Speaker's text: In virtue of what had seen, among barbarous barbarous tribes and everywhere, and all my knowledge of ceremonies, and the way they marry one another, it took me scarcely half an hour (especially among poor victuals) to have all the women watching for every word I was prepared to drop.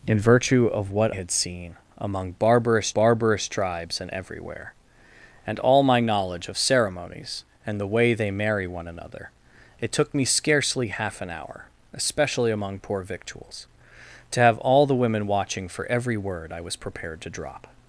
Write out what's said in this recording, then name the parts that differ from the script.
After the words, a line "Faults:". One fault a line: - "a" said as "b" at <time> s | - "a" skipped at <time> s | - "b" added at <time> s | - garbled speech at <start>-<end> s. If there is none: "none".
In virtue of what had seen, among barbarous barbarous tribes and everywhere, and all my knowledge of ceremonies, and the way they marry one another, it took me scarcely half an hour (especially among poor victuals) to have all the women watching for every word I was prepared to drop.
Faults:
none